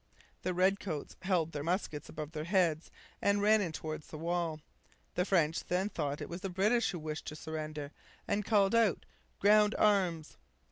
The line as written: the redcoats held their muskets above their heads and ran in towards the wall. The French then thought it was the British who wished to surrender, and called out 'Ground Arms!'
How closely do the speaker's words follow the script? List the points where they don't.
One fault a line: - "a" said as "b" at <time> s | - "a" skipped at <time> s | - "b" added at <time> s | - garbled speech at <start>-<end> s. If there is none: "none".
none